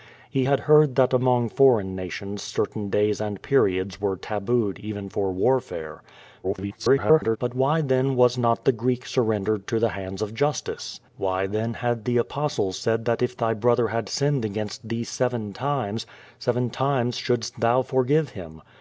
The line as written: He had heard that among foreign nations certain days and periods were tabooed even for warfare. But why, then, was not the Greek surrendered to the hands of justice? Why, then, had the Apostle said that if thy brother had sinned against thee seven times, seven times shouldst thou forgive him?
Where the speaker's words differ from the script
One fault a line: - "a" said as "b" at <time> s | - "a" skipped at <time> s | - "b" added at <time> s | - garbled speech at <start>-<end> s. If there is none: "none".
- garbled speech at 6.4-7.4 s